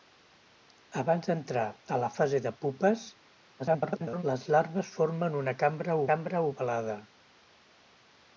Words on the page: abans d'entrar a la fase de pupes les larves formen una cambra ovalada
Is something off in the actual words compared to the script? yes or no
yes